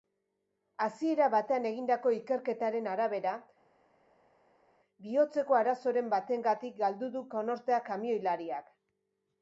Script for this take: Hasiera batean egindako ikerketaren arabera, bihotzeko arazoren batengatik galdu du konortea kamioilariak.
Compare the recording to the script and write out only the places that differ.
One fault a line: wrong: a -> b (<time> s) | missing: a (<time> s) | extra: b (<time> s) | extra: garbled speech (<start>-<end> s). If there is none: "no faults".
no faults